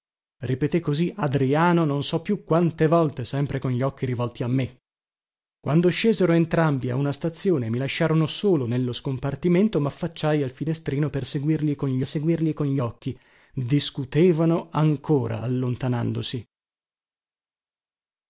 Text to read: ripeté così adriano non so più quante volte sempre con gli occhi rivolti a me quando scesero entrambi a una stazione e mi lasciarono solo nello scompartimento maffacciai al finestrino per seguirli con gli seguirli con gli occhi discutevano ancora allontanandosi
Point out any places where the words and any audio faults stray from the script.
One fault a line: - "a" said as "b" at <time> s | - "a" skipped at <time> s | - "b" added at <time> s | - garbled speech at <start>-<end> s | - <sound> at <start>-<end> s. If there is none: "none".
none